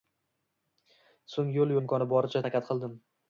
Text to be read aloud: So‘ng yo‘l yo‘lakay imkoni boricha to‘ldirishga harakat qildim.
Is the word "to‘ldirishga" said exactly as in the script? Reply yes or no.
no